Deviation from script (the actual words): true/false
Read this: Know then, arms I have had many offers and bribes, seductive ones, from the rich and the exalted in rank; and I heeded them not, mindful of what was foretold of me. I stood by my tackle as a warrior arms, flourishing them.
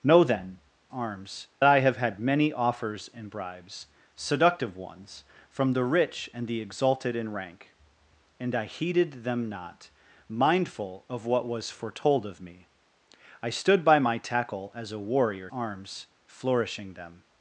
false